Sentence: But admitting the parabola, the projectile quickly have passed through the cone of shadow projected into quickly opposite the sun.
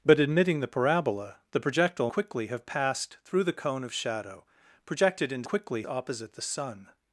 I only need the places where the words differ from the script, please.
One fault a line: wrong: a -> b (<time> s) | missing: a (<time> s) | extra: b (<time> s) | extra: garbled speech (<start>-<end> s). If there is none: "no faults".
no faults